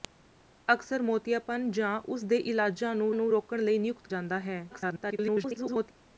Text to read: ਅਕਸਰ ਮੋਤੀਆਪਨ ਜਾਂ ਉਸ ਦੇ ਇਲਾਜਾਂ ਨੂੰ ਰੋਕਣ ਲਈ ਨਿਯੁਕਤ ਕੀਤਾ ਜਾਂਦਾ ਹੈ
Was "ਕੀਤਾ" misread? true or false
true